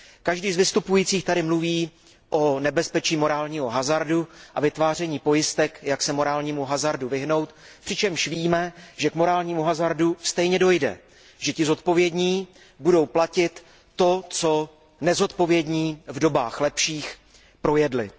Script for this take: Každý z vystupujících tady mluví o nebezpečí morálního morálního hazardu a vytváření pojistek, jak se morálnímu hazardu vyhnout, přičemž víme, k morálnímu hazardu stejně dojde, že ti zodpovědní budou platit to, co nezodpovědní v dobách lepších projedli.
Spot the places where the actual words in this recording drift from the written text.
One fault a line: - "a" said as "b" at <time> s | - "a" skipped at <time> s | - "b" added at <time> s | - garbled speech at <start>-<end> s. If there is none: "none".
- "morálního" skipped at 3.7 s
- "že" added at 9.0 s